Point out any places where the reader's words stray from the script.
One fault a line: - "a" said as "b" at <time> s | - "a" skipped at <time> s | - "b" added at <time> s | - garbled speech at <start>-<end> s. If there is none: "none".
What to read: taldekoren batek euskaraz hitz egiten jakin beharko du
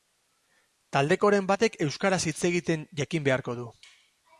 none